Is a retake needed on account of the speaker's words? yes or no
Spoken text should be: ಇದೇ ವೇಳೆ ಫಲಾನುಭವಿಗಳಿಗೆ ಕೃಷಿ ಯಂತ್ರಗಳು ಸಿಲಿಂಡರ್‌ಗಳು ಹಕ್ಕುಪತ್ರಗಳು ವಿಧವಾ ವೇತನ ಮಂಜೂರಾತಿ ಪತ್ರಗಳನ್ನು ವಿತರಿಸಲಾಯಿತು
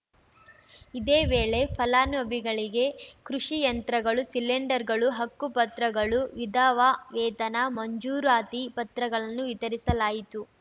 no